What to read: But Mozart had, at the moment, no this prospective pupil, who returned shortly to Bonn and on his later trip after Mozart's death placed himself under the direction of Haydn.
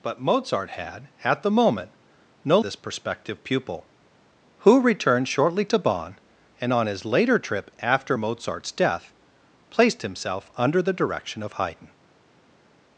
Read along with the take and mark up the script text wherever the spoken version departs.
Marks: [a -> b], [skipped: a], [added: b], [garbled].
But Mozart had, at the moment, no this prospective pupil, who returned shortly to Bonn and on his later trip after Mozart's death placed himself under the direction of Haydn.